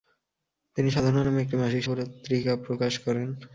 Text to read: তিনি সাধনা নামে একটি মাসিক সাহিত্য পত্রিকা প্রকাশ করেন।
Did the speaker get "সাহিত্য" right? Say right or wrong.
wrong